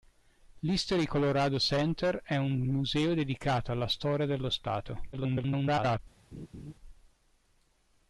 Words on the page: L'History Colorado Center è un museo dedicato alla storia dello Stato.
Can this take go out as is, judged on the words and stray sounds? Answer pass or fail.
fail